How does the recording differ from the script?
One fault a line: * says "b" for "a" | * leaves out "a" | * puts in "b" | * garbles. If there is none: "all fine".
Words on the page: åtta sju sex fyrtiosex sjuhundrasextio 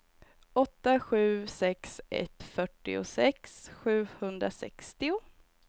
* puts in "ett"